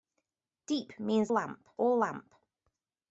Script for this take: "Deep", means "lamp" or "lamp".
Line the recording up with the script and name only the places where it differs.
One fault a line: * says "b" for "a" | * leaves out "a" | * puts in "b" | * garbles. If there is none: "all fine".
all fine